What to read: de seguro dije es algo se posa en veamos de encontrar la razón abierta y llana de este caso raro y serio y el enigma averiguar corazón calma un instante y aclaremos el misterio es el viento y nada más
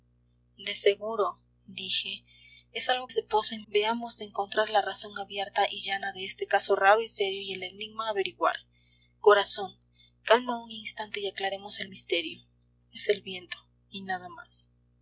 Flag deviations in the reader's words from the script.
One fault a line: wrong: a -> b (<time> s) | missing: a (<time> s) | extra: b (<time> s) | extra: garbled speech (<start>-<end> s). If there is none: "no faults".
no faults